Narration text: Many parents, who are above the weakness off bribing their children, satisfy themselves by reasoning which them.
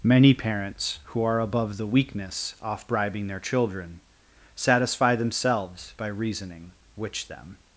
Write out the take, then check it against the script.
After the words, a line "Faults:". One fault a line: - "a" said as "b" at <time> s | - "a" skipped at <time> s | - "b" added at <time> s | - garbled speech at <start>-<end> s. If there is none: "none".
Many parents, who are above the weakness off bribing their children, satisfy themselves by reasoning which them.
Faults:
none